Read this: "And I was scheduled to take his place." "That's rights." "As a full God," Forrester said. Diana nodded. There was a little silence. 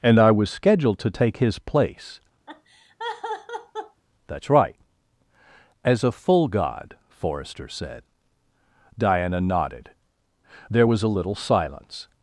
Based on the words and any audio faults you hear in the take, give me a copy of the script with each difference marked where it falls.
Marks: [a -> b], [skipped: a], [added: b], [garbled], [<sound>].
"And I was scheduled to take his place." [laugh] "That's [rights." -> right] "As a full God," Forrester said. Diana nodded. There was a little silence.